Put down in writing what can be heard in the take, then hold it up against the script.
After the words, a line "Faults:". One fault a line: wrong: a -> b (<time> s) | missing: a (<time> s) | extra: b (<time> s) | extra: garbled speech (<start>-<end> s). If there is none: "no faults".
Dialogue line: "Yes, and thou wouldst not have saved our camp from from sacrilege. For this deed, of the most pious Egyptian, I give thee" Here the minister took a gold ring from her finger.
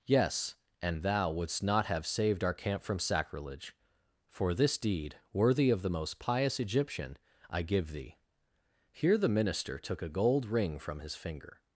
"Yes, and thou wouldst not have saved our camp from sacrilege. For this deed, worthy of the most pious Egyptian, I give thee" Here the minister took a gold ring from his finger.
Faults:
missing: from (3.0 s)
extra: worthy (5.3 s)
wrong: her -> his (11.0 s)